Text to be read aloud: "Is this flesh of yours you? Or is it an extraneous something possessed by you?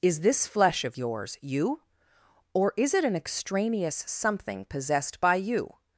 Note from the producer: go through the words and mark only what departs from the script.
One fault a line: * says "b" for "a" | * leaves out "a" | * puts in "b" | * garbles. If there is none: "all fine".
all fine